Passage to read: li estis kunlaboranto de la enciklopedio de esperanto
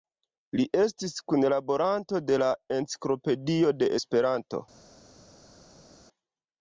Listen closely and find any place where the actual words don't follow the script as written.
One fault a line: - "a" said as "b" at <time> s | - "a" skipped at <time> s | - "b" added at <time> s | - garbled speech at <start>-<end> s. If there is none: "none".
none